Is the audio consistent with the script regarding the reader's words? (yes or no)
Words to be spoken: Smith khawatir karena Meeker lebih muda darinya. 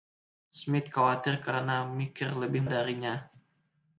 no